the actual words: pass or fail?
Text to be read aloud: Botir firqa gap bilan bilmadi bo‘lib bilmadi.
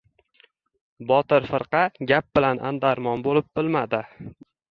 fail